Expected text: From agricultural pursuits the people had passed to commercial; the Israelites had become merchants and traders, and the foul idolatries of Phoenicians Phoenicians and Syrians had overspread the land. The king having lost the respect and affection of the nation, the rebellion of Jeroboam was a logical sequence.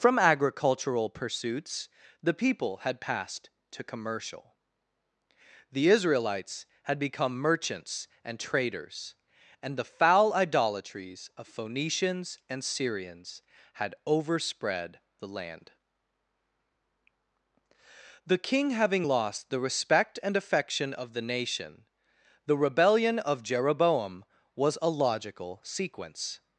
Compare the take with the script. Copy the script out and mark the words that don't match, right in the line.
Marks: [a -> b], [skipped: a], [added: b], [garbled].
From agricultural pursuits the people had passed to commercial; the Israelites had become merchants and traders, and the foul idolatries of Phoenicians [skipped: Phoenicians] and Syrians had overspread the land. The king having lost the respect and affection of the nation, the rebellion of Jeroboam was a logical sequence.